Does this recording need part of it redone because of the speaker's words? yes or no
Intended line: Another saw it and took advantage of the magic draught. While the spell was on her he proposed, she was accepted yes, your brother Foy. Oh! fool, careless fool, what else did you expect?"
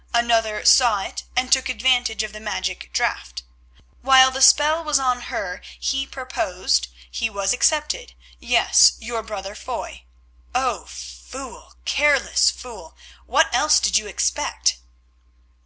yes